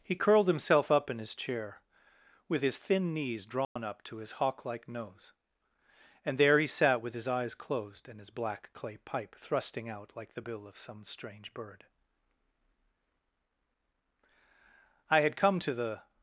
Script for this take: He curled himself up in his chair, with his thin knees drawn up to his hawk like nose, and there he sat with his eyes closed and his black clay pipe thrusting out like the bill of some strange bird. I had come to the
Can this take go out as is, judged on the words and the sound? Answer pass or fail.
fail